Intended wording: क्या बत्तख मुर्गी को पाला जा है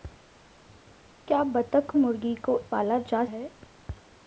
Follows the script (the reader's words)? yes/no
yes